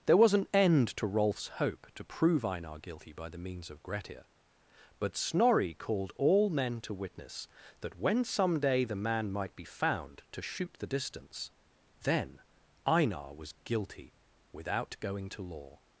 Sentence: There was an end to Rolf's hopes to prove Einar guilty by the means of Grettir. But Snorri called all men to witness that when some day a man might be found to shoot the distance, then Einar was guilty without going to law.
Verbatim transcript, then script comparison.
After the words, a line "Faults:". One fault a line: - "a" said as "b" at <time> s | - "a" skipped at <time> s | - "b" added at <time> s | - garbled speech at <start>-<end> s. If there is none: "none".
There was an end to Rolf's hope to prove Einar guilty by the means of Grettir. But Snorri called all men to witness that when some day the man might be found to shoot the distance, then Einar was guilty without going to law.
Faults:
- "hopes" said as "hope" at 1.5 s
- "a" said as "the" at 8.8 s